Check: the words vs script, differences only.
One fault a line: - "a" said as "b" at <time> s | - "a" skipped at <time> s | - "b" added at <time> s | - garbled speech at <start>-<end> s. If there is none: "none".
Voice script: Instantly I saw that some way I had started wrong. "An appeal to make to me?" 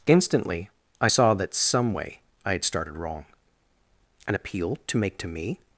none